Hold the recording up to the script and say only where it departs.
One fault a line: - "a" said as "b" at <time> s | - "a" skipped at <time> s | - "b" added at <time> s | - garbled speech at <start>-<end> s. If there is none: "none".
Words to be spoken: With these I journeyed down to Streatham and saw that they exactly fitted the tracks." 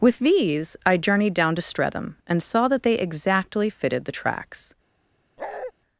none